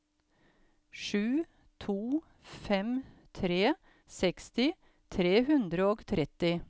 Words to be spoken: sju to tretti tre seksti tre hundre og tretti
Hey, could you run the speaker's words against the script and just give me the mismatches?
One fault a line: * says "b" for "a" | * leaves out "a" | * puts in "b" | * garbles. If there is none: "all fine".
* says "fem" for "tretti"